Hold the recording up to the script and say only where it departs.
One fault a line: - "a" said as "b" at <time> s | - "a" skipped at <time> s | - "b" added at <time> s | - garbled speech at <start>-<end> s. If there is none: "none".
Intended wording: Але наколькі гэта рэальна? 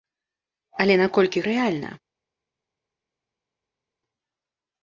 - "гэта" skipped at 1.4 s